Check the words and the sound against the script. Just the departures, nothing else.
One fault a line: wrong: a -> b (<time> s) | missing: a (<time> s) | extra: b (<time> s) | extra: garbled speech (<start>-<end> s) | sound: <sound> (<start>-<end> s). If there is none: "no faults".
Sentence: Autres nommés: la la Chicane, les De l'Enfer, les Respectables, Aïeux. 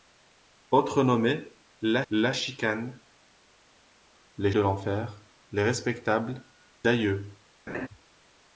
sound: laugh (7.7-7.9 s)